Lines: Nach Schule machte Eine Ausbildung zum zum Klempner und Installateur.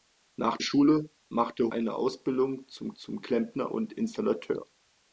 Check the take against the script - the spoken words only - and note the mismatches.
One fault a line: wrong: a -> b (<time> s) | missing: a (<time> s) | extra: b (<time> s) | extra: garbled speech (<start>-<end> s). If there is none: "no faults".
no faults